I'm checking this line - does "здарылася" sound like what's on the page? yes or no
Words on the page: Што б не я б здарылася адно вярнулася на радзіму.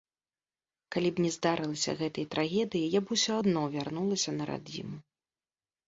no